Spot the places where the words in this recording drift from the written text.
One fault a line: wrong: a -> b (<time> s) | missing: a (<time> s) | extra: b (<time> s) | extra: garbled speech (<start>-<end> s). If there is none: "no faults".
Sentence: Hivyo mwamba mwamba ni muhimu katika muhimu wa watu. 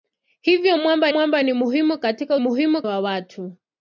no faults